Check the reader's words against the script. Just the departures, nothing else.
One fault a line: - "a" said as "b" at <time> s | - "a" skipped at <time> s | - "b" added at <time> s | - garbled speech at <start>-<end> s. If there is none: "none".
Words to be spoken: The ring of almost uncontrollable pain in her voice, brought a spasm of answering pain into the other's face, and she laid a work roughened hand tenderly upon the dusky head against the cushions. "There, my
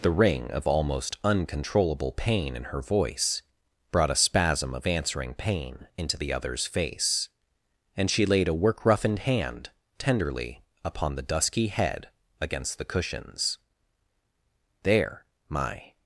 none